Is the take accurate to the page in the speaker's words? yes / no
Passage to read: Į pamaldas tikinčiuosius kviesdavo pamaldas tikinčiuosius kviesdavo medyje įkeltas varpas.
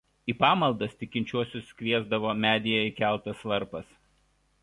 no